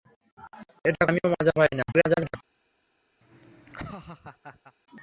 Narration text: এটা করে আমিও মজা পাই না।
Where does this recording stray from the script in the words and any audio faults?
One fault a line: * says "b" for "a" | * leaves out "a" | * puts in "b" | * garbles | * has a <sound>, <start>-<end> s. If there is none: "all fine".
* leaves out "করে"
* garbles
* has a laugh, 3.2-4.7 s